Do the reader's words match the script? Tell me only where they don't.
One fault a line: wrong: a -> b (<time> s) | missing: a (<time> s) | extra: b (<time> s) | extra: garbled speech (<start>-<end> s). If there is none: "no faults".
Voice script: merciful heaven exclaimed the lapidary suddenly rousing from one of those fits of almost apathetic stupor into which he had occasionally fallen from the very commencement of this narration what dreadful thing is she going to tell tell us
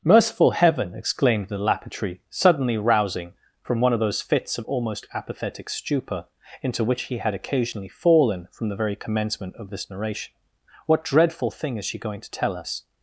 missing: tell (12.6 s)